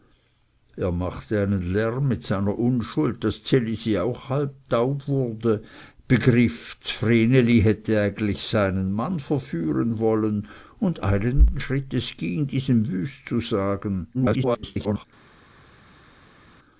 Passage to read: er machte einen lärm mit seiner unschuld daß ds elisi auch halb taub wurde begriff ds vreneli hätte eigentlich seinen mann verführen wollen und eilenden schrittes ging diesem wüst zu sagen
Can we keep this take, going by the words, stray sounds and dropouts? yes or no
no